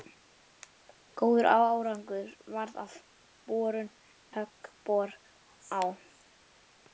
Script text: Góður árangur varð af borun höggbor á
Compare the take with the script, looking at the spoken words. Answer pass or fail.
pass